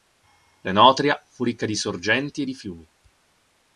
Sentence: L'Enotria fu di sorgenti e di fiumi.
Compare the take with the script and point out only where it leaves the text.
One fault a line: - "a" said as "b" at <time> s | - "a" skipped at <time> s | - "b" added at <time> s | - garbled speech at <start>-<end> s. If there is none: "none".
- "ricca" added at 1.4 s